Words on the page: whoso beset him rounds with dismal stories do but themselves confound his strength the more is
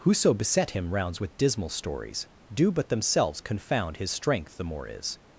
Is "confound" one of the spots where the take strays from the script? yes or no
no